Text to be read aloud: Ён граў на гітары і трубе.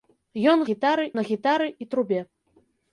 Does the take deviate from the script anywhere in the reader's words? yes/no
yes